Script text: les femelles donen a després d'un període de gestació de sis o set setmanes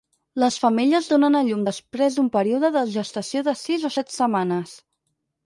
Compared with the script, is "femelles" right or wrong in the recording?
right